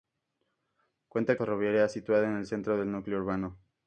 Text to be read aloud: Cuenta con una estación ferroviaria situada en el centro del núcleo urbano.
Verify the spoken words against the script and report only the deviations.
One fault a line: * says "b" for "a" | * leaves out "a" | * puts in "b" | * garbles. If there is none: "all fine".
* leaves out "con una estación"